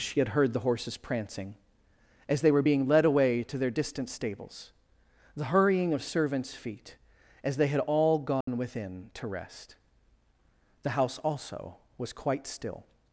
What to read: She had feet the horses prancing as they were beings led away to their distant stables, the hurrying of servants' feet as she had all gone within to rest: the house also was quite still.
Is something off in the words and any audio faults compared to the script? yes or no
yes